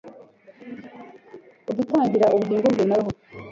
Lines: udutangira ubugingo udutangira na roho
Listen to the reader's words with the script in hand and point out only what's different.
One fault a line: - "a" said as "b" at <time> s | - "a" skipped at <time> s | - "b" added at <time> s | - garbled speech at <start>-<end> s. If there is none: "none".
- "udutangira" said as "bwe" at 2.7 s